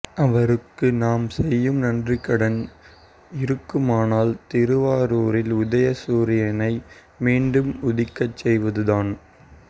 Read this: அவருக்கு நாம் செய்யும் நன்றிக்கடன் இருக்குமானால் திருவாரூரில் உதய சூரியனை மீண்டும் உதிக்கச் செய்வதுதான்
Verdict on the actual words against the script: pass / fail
pass